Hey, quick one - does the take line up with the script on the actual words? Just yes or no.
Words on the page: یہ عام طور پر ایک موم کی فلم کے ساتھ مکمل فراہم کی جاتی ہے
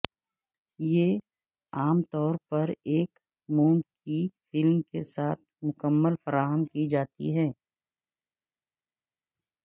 yes